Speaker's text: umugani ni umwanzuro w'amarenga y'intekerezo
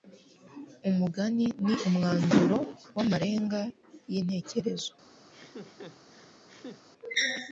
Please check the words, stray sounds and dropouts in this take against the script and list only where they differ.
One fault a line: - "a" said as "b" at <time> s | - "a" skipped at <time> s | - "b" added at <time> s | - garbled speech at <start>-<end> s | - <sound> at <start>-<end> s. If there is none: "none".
- laugh at 5.3-6.8 s